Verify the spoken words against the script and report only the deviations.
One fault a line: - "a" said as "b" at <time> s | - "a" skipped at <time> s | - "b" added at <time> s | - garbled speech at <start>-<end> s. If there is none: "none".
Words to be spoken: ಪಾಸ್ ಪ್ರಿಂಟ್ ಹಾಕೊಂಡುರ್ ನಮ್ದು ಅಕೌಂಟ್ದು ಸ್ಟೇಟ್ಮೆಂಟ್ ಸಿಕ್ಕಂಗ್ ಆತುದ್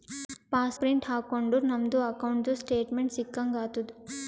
none